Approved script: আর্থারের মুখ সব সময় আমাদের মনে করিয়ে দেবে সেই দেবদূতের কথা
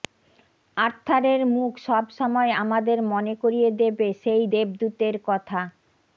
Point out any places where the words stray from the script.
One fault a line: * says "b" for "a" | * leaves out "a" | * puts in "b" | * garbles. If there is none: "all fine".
all fine